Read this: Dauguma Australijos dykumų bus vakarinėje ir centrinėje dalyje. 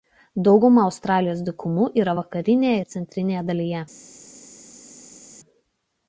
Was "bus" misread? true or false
true